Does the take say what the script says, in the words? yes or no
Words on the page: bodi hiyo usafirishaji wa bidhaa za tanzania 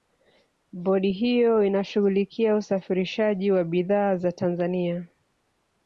no